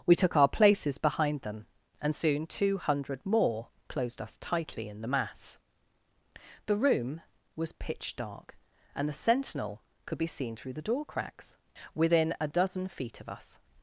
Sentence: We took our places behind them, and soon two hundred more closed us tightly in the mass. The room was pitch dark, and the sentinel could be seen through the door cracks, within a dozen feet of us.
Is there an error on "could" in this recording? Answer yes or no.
no